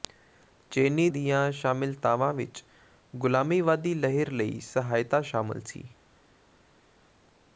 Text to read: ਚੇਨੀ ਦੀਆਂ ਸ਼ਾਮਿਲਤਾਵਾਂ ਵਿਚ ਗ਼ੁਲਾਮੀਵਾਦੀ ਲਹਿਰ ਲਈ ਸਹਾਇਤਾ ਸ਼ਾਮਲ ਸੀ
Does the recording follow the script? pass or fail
pass